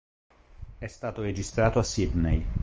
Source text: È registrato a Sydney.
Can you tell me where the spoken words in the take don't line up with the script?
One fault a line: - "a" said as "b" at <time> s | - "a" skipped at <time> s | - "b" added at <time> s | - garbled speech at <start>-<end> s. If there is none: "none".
- "stato" added at 0.9 s